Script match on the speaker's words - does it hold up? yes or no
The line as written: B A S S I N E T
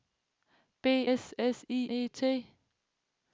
no